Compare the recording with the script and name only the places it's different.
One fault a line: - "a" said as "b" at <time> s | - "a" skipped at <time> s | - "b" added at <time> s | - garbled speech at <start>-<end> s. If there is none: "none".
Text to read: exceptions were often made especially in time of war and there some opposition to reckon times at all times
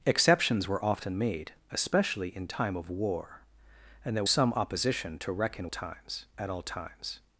none